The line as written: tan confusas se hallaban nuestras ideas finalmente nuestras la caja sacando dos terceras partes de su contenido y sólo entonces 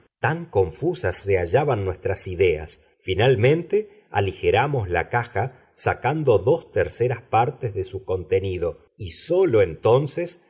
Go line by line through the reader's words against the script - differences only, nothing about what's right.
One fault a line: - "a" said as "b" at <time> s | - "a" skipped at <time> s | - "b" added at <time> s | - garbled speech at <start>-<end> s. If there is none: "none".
- "nuestras" said as "aligeramos" at 4.1 s